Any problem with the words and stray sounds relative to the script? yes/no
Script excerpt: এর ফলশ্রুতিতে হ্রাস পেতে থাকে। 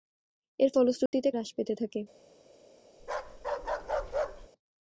yes